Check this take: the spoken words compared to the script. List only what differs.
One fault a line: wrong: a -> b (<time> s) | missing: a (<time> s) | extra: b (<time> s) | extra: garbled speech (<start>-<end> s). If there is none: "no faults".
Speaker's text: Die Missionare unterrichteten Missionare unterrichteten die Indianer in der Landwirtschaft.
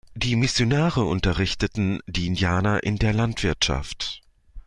missing: Missionare unterrichteten (2.0 s)